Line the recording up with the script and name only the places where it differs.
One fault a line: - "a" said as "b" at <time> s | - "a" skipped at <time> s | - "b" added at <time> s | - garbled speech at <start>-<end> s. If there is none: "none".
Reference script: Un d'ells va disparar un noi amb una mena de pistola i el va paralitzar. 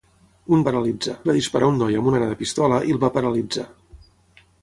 - "d'ells" said as "paralitzar" at 0.7 s
- "una" skipped at 2.1 s